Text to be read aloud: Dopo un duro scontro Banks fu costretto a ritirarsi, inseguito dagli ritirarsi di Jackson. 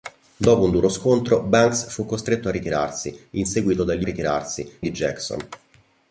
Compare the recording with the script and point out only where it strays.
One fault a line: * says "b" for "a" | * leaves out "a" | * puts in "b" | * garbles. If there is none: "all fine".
all fine